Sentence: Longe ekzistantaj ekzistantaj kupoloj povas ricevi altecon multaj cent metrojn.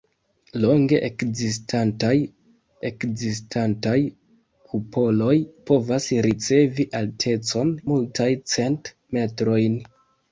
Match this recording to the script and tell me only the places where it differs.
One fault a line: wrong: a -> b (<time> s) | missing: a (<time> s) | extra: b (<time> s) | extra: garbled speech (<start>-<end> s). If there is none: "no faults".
no faults